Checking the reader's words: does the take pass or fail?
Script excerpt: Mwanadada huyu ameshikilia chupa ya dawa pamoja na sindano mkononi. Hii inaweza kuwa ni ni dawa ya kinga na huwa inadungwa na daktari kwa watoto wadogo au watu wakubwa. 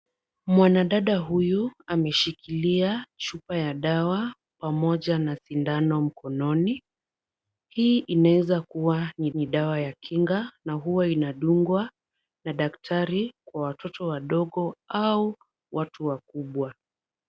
pass